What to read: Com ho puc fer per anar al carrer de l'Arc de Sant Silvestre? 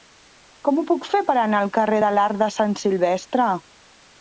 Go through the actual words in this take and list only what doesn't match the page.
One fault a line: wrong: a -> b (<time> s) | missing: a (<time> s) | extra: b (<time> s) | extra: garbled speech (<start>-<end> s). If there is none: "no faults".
no faults